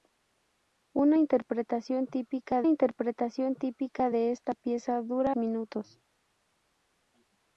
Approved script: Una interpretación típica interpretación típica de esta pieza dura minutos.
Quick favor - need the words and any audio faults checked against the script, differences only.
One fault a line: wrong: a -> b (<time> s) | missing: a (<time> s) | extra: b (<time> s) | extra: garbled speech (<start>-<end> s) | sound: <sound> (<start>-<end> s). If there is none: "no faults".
no faults